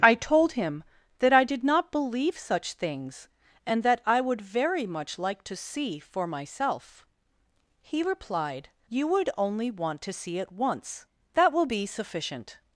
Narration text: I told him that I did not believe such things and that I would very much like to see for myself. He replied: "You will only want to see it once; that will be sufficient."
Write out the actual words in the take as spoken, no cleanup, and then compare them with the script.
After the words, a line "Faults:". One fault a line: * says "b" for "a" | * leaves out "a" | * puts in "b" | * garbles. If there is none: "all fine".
I told him that I did not believe such things and that I would very much like to see for myself. He replied: "You would only want to see it once; that will be sufficient."
Faults:
* says "would" for "will"